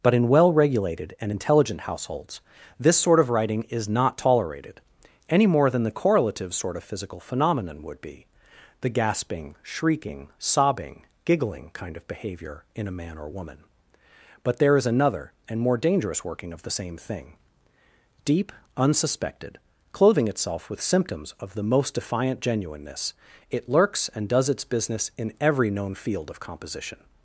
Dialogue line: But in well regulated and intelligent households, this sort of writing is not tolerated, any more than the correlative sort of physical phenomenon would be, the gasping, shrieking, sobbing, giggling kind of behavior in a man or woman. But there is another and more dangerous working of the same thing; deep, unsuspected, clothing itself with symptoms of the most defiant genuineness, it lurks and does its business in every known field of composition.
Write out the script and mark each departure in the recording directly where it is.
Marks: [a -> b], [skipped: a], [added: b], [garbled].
But in well regulated and intelligent households, this sort of writing is not tolerated, any more than the correlative sort of physical phenomenon would be, the gasping, shrieking, sobbing, giggling kind of behavior in a man or woman. But there is another and more dangerous working of the same thing; deep, unsuspected, clothing itself with symptoms of the most defiant genuineness, it lurks and does its business in every known field of composition.